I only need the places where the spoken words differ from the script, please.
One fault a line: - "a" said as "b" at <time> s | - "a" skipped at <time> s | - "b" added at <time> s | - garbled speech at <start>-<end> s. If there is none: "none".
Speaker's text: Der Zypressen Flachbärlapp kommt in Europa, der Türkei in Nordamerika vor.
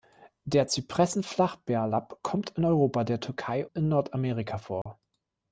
none